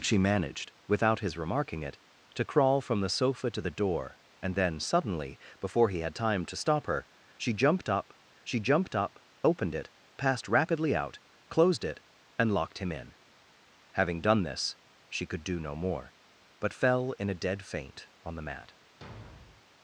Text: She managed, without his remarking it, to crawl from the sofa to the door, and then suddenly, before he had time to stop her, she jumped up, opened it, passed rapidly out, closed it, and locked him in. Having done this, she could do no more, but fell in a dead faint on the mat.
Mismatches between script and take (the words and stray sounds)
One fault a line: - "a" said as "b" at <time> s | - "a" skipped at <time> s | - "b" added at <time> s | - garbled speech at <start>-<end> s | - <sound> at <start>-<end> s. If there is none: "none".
- "she jumped up" added at 8.4 s
- thud at 19.0-19.7 s